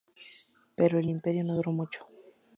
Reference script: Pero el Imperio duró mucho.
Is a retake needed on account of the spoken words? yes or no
yes